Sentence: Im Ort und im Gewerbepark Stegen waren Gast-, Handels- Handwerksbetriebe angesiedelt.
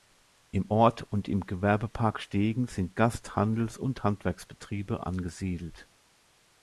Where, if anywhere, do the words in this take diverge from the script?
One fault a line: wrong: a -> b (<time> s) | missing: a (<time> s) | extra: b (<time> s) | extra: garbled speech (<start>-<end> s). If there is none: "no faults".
wrong: waren -> sind (2.7 s)
extra: und (3.8 s)